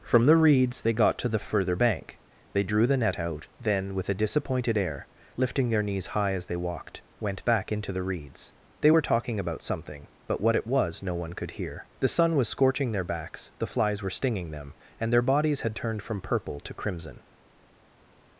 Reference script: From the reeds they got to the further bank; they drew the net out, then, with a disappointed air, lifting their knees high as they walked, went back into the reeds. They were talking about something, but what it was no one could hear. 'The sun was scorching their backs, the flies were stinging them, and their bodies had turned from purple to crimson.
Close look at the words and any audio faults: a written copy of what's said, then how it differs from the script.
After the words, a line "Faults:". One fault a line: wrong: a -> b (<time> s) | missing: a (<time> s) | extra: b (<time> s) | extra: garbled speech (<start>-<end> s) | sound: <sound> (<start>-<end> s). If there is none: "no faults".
From the reeds they got to the further bank; they drew the net out, then, with a disappointed air, lifting their knees high as they walked, went back into the reeds. They were talking about something, but what it was no one could hear. 'The sun was scorching their backs, the flies were stinging them, and their bodies had turned from purple to crimson.
Faults:
no faults